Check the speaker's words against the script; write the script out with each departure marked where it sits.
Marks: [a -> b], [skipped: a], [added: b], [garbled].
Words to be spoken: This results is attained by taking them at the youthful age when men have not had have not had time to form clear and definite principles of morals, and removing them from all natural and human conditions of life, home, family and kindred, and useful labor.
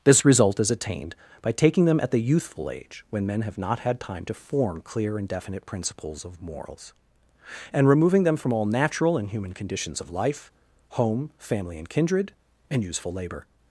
This [results -> result] is attained by taking them at the youthful age when men have not had [skipped: have not had] time to form clear and definite principles of morals, and removing them from all natural and human conditions of life, home, family and kindred, and useful labor.